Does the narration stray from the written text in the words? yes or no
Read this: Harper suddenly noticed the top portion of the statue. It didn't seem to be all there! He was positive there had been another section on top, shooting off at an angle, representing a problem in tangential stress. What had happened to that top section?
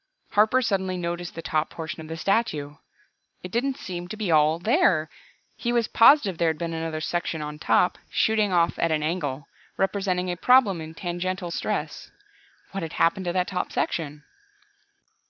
no